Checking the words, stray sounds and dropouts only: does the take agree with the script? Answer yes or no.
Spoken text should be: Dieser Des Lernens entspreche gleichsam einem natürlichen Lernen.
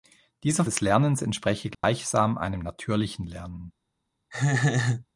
no